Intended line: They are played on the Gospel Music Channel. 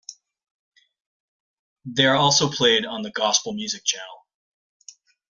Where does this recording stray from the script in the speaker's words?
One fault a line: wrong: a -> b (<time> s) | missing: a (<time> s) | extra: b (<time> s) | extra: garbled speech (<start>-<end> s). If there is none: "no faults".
extra: also (2.1 s)